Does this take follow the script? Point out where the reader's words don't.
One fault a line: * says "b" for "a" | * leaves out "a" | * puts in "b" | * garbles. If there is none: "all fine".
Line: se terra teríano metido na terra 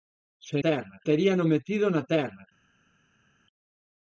all fine